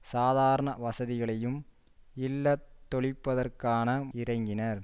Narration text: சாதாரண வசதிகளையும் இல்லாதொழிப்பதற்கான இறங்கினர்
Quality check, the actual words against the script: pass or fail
pass